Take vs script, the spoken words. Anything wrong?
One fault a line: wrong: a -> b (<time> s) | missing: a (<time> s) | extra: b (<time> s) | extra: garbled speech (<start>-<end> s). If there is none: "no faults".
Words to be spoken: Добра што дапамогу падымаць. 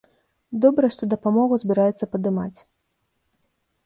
extra: збіраюцца (1.6 s)